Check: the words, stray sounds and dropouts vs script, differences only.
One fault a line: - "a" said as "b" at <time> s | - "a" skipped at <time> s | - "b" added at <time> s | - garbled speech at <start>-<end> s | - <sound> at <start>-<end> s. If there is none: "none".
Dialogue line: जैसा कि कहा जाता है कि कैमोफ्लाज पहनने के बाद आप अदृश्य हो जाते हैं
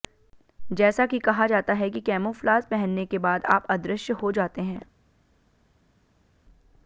none